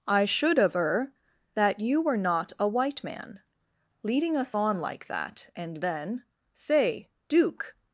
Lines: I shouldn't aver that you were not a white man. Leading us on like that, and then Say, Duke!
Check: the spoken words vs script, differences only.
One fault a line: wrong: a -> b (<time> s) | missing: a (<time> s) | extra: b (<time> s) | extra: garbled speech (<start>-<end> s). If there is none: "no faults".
wrong: shouldn't -> should (0.2 s)